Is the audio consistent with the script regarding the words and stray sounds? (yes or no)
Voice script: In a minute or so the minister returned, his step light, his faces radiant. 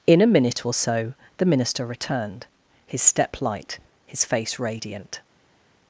no